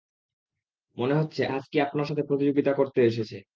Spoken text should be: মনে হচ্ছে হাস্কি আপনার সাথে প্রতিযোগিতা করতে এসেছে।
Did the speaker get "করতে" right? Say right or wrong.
right